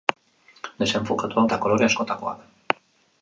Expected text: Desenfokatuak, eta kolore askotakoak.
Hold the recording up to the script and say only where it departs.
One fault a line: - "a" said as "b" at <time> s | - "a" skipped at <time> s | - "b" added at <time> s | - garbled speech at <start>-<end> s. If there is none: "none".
none